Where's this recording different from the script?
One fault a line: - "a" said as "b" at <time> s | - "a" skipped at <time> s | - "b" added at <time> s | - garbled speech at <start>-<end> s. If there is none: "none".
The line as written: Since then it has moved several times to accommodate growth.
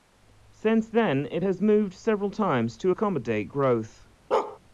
none